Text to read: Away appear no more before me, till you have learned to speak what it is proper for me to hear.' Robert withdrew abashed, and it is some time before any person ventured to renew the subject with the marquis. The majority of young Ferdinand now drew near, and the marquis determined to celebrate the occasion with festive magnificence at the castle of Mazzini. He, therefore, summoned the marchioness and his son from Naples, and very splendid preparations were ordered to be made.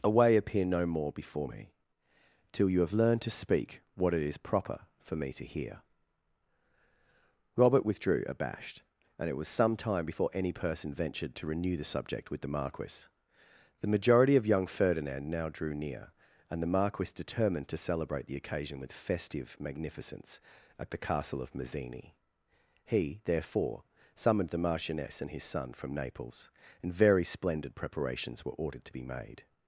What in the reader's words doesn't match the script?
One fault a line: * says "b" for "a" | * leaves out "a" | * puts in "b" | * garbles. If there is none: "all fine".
* says "was" for "is"